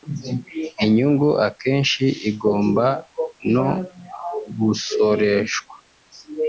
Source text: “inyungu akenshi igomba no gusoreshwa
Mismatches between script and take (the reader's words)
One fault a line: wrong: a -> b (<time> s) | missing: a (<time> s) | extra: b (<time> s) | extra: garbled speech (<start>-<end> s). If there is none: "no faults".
no faults